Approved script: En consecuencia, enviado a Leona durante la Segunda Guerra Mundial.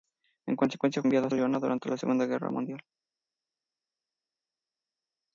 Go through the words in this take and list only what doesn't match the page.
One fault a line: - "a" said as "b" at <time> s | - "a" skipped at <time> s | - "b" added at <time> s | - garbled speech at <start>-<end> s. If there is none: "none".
none